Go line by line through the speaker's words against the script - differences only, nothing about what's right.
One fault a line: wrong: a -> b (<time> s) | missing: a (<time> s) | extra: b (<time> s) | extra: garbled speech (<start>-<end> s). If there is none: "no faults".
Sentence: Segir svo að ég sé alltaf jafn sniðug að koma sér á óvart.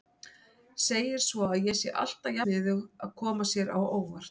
missing: jafn (2.4 s)